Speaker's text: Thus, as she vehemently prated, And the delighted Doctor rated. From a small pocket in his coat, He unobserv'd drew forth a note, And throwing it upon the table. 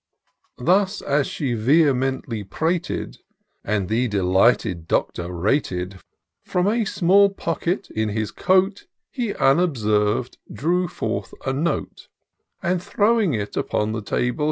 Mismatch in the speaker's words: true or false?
false